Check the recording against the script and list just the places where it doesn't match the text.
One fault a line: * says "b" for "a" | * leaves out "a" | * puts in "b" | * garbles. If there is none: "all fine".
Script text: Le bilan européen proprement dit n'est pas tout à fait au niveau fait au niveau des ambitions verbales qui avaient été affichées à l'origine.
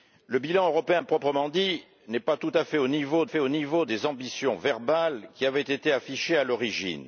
all fine